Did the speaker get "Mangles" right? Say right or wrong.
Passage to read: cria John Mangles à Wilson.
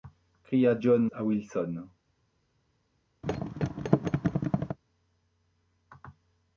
wrong